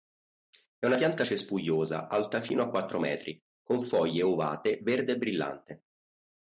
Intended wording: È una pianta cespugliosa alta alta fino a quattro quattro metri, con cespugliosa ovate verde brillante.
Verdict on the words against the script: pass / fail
fail